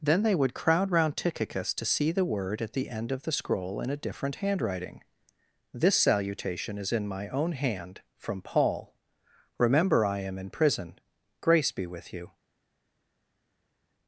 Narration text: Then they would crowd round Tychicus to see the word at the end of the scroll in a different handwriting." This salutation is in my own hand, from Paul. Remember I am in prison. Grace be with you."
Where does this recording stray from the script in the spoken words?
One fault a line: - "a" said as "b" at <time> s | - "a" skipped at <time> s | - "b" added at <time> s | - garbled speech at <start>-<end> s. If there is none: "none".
none